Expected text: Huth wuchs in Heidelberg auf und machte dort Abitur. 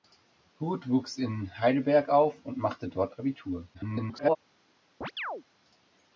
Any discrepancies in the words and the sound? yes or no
yes